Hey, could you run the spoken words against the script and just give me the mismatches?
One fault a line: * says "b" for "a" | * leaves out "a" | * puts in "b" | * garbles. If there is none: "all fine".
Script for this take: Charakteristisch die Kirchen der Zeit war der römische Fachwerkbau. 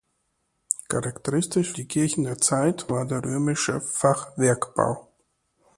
all fine